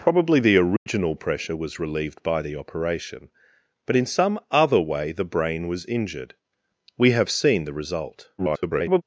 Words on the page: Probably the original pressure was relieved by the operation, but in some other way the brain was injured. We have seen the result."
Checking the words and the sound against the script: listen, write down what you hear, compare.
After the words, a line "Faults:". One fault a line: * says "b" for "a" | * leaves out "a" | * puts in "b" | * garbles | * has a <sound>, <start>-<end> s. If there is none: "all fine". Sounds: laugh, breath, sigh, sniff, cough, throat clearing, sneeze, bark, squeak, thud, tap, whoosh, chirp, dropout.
Probably the original pressure was relieved by the operation, but in some other way the brain was injured. We have seen the result." [garbled]
Faults:
* has a dropout, 0.8-0.9 s
* garbles